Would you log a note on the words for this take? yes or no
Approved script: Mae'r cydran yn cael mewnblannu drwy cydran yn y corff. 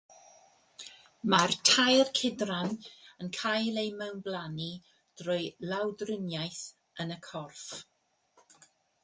yes